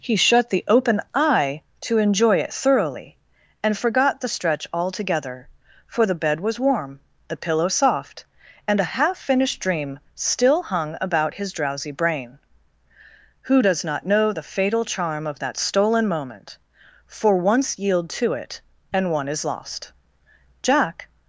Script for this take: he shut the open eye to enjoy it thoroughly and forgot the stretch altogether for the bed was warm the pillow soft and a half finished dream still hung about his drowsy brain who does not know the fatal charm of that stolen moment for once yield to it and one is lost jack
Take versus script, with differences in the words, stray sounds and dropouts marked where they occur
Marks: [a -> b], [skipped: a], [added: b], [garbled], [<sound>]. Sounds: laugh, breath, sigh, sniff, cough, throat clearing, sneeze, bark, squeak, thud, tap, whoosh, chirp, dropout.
he shut the open eye to enjoy it thoroughly and forgot the stretch altogether for the bed was warm the pillow soft and a half finished dream still hung about his drowsy brain who does not know the fatal charm of that stolen moment for once yield to it and one is lost jack